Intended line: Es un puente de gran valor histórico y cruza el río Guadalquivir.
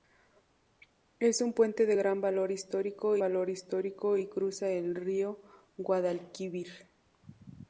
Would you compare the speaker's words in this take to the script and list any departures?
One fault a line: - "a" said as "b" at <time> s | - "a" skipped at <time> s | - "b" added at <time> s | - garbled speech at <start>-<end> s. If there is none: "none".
- "valor histórico" added at 3.2 s